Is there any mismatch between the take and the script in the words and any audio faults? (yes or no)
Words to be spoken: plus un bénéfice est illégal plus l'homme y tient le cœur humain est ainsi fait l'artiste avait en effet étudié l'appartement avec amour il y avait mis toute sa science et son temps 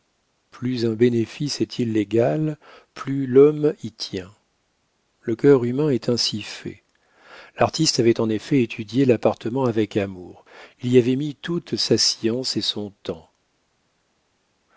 no